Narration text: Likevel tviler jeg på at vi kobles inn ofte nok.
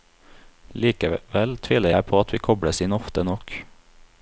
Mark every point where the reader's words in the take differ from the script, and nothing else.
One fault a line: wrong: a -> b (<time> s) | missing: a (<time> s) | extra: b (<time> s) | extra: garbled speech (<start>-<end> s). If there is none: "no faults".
no faults